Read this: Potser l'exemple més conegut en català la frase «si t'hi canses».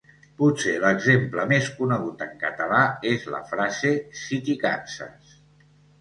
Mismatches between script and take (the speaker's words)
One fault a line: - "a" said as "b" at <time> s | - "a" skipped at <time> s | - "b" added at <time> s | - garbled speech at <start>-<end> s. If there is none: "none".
- "és" added at 3.1 s